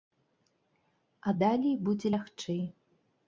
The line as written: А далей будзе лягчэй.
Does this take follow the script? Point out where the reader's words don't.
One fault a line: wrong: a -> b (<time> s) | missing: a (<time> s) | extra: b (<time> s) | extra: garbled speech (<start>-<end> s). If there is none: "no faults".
no faults